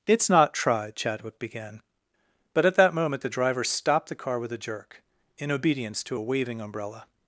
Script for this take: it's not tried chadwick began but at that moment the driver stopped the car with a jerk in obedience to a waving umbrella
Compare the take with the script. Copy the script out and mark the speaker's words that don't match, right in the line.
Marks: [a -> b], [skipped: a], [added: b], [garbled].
it's not tried chadwick began but at that moment the driver stopped the car with a jerk in obedience to a waving umbrella